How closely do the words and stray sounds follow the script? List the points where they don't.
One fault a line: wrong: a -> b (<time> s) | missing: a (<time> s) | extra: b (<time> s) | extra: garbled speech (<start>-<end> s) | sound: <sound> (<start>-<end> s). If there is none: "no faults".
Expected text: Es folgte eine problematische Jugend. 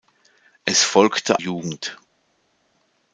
missing: eine problematische (1.4 s)